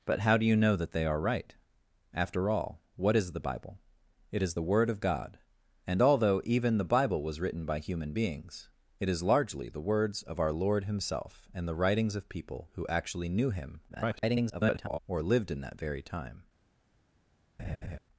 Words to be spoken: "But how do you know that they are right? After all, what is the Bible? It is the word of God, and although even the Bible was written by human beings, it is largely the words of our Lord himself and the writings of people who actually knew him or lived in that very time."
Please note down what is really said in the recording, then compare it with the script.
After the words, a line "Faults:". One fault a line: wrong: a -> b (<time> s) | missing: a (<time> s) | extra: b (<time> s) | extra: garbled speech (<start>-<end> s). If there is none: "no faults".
"But how do you know that they are right? After all, what is the Bible? It is the word of God, and although even the Bible was written by human beings, it is largely the words of our Lord himself and the writings of people who actually knew him [garbled] or lived in that very time."
Faults:
extra: garbled speech (13.9-15.0 s)